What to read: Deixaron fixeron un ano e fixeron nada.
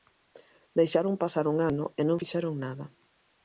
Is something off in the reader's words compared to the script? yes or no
yes